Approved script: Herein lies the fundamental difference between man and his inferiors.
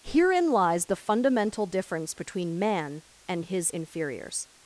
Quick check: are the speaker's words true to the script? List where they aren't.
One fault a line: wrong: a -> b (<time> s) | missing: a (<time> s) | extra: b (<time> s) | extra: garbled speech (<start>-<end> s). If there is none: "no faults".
no faults